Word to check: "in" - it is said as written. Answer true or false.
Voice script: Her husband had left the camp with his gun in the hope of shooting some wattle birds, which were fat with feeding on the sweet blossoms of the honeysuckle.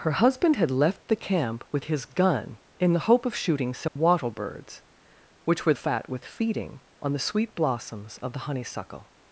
true